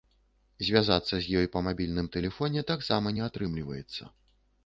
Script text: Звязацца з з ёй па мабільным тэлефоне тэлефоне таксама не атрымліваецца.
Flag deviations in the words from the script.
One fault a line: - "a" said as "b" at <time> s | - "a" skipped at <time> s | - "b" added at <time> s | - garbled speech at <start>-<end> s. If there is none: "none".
- "з" skipped at 1.4 s
- "тэлефоне" skipped at 2.6 s